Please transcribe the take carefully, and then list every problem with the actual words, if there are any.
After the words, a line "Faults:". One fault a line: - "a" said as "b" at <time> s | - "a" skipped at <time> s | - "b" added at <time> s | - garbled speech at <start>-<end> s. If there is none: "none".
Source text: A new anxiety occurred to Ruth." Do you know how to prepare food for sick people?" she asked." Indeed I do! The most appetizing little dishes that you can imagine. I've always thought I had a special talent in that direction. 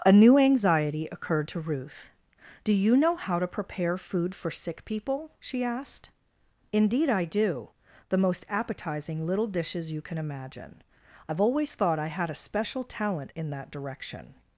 A new anxiety occurred to Ruth." Do you know how to prepare food for sick people?" she asked." Indeed I do! The most appetizing little dishes you can imagine. I've always thought I had a special talent in that direction.
Faults:
- "that" skipped at 9.9 s